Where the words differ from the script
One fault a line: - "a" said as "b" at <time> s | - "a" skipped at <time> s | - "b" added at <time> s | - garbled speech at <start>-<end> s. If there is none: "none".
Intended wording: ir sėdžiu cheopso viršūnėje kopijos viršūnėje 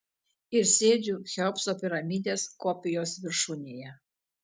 - "viršūnėje" said as "piramidės" at 1.8 s